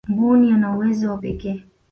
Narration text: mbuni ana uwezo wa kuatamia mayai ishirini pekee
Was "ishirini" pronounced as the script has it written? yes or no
no